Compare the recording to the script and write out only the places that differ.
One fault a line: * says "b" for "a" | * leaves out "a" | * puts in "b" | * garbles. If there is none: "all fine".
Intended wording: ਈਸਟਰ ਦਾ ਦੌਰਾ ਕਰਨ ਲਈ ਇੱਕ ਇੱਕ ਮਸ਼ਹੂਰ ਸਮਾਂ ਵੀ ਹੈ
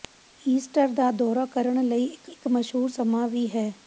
all fine